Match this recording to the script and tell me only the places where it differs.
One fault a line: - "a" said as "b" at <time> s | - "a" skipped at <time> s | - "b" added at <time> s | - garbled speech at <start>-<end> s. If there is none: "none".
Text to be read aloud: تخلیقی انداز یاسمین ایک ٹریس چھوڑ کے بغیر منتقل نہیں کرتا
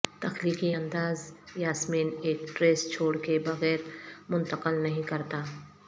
none